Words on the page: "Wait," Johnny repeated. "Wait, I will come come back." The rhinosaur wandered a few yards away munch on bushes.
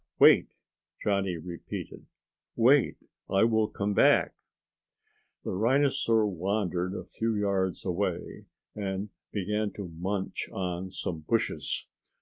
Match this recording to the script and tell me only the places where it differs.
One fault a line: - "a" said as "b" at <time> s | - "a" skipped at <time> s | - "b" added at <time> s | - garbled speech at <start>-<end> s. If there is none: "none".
- "come" skipped at 3.9 s
- "and began to" added at 8.7 s
- "some" added at 10.9 s